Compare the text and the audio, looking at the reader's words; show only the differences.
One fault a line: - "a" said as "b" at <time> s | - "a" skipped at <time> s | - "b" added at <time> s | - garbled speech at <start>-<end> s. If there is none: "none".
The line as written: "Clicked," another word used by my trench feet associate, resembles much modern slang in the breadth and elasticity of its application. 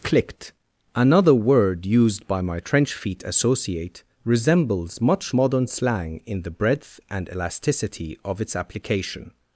none